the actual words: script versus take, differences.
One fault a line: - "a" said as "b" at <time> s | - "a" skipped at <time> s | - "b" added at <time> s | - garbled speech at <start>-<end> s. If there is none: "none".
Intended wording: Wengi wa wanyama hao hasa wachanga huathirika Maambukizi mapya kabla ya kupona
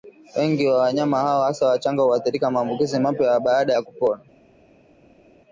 - "kabla" said as "baada" at 3.4 s